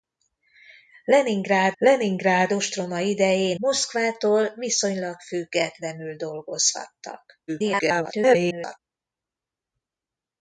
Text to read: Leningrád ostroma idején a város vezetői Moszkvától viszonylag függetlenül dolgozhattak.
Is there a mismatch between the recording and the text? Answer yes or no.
yes